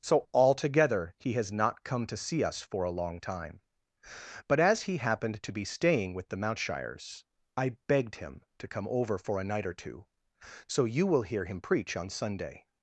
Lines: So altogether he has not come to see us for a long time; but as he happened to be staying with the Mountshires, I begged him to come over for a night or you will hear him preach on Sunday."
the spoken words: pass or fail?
fail